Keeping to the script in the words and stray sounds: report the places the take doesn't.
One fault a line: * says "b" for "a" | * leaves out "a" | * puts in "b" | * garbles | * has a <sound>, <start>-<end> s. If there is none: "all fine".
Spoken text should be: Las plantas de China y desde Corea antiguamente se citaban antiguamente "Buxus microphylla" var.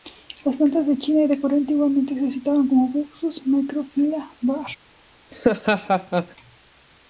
* says "de" for "desde"
* says "como" for "antiguamente"
* has a laugh, 5.3-6.4 s